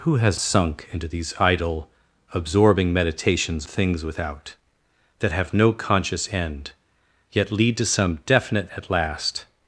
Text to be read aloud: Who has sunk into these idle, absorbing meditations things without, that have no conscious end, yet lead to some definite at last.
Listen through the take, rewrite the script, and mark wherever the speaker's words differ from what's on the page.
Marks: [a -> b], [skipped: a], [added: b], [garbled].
Who has sunk into these idle, absorbing meditations things without, that have no conscious end, yet lead to some definite at last.